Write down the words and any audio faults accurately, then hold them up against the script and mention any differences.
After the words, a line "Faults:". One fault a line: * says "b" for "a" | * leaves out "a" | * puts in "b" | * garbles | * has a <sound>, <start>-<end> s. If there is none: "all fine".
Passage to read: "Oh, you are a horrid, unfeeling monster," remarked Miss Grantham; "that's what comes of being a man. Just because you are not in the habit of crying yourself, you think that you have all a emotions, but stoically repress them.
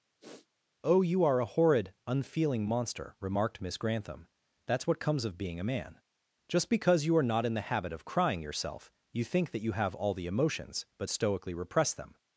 "Oh, you are a horrid, unfeeling monster," remarked Miss Grantham; "that's what comes of being a man. Just because you are not in the habit of crying yourself, you think that you have all the emotions, but stoically repress them.
Faults:
* has a sniff, 0.2-0.5 s
* says "the" for "a"